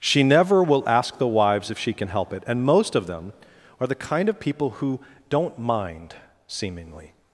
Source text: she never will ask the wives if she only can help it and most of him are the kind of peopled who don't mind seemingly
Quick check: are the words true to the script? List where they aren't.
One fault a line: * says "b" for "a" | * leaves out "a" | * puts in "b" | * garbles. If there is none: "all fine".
* leaves out "only"
* says "them" for "him"
* says "people" for "peopled"